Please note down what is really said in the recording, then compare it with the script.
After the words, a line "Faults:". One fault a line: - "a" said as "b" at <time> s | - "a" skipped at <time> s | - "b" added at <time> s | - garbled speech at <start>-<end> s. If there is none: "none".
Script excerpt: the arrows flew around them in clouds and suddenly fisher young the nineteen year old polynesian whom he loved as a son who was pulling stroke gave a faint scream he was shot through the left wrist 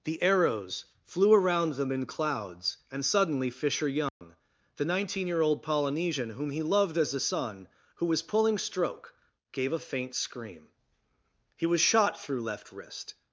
the arrows flew around them in clouds and suddenly fisher young the nineteen year old polynesian whom he loved as a son who was pulling stroke gave a faint scream he was shot through left wrist
Faults:
- "the" skipped at 12.4 s